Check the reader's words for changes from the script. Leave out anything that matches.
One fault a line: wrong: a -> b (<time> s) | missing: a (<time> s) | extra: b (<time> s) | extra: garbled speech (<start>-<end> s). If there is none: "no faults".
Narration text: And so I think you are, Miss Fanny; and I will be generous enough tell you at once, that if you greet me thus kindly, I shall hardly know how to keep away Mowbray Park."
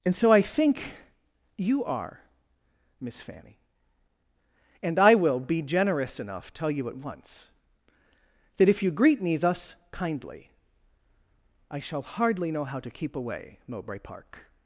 no faults